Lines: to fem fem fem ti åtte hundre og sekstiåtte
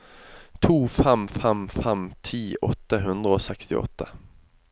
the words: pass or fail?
pass